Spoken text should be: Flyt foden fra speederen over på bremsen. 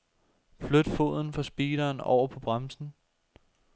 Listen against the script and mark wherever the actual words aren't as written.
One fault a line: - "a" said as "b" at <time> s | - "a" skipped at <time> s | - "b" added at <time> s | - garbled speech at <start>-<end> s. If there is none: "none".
none